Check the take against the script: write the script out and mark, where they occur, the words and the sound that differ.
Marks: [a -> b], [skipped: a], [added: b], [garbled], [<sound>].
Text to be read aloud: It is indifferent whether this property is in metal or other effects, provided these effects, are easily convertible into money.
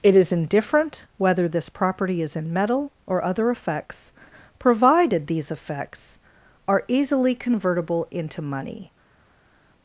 It is indifferent whether this property is in metal or other effects, provided these effects, are easily convertible into money.